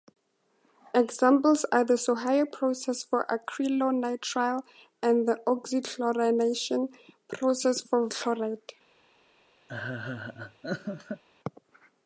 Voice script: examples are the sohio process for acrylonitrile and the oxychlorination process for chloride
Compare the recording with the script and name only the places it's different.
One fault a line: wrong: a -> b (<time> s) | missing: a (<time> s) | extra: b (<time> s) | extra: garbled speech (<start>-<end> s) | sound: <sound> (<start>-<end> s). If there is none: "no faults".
sound: laugh (9.7-11.2 s)